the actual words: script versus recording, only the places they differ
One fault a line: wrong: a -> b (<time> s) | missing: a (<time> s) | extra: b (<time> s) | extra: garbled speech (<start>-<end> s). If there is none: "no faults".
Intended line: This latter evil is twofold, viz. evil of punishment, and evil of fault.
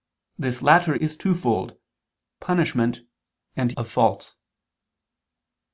missing: evil (0.9 s)
missing: viz evil of (1.8 s)
missing: evil (3.7 s)